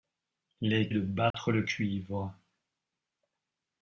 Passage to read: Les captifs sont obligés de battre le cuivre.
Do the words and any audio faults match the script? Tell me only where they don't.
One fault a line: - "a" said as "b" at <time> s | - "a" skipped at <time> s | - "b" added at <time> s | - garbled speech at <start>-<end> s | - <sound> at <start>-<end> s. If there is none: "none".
- "captifs sont obligés" skipped at 0.9 s
- dropout at 1.3-1.3 s